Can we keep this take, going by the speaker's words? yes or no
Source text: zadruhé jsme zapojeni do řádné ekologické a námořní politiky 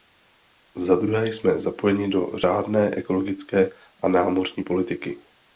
yes